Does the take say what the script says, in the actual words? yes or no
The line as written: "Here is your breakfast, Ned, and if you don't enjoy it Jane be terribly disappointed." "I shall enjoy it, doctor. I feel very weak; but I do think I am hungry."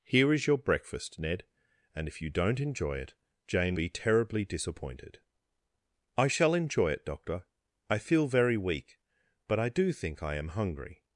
yes